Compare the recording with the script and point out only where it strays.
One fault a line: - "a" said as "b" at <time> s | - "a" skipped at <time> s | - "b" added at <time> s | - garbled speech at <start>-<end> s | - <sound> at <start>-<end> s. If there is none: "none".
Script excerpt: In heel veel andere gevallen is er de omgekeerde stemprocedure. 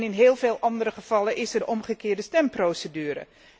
none